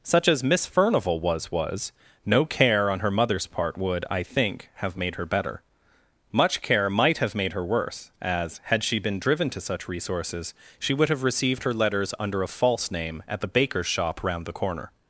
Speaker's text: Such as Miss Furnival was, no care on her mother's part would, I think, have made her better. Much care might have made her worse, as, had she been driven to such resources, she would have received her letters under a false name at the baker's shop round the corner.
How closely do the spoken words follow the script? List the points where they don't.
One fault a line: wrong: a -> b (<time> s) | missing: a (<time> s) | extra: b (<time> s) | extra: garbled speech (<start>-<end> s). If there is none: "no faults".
extra: was (1.5 s)